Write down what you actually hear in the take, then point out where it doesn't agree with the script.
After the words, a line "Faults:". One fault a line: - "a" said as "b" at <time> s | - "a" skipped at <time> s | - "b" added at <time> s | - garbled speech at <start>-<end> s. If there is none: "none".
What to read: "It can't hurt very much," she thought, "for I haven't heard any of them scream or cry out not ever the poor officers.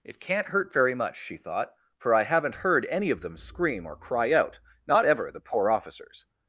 "It can't hurt very much," she thought, "for I haven't heard any of them scream or cry out not ever the poor officers.
Faults:
none